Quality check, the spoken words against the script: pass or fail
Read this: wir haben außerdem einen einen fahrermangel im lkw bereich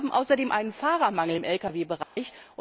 fail